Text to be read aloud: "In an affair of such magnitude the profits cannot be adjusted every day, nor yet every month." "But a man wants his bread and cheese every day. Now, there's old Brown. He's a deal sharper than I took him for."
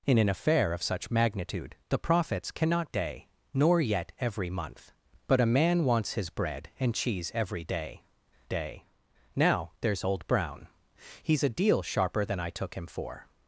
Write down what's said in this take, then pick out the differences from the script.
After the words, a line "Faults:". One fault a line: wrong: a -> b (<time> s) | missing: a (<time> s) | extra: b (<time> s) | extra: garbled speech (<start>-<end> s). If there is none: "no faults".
"In an affair of such magnitude the profits cannot day, nor yet every month." "But a man wants his bread and cheese every day day. Now, there's old Brown. He's a deal sharper than I took him for."
Faults:
missing: be adjusted every (2.9 s)
extra: day (8.5 s)